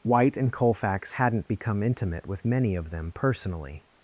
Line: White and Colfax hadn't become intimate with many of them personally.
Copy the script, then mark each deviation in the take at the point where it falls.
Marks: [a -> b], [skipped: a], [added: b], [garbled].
White and Colfax hadn't become intimate with many of them personally.